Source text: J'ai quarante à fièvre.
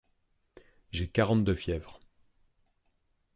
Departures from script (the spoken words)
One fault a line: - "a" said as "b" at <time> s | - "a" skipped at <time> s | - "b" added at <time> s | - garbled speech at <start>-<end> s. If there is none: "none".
- "à" said as "de" at 1.4 s